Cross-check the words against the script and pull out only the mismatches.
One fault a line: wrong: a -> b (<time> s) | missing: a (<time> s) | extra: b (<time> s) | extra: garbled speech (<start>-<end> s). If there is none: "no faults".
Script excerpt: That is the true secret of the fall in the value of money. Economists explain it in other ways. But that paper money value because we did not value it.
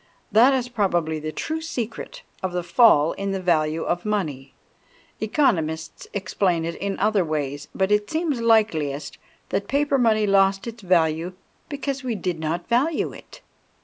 extra: probably (0.7 s)
extra: it seems likeliest (7.9 s)
extra: lost its (10.2 s)